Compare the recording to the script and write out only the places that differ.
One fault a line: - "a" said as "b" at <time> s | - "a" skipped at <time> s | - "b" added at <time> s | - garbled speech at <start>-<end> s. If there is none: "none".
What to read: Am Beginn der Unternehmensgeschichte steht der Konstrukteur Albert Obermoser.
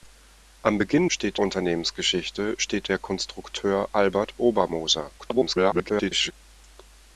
- "der" said as "steht" at 1.1 s
- garbled speech at 5.2-6.3 s